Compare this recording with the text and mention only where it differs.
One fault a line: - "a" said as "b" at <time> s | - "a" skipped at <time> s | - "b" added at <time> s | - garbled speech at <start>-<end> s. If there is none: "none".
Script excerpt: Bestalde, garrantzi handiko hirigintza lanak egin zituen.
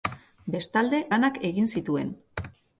- "garrantzi handiko hirigintza" skipped at 1.0 s